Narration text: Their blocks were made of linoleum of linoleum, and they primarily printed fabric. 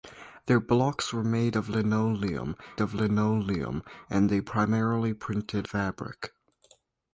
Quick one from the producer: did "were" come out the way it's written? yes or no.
yes